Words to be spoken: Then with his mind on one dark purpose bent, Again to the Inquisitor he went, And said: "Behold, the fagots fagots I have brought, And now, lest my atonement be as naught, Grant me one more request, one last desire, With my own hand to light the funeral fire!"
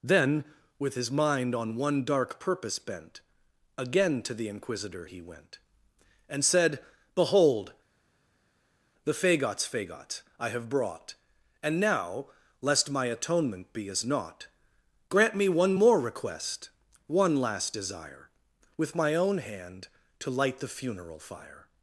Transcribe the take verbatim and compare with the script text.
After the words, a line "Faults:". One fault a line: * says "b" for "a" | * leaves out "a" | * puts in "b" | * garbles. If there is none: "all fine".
Then with his mind on one dark purpose bent, Again to the Inquisitor he went, And said: "Behold, the fagots fagots I have brought, And now, lest my atonement be as naught, Grant me one more request, one last desire, With my own hand to light the funeral fire!"
Faults:
all fine